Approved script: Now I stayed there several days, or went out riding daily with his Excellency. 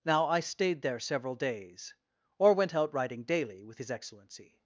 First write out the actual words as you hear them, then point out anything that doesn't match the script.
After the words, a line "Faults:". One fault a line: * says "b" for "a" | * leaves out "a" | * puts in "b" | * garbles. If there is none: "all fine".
Now I stayed there several days, or went out riding daily with his Excellency.
Faults:
all fine